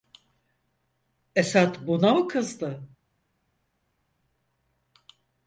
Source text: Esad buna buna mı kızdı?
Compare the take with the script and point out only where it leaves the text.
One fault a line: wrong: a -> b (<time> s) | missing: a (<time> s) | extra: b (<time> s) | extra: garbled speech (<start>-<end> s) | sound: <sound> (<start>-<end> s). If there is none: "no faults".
missing: buna (2.1 s)